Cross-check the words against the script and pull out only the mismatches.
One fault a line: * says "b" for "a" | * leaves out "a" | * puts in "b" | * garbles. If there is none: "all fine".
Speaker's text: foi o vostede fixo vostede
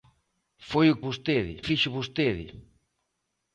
all fine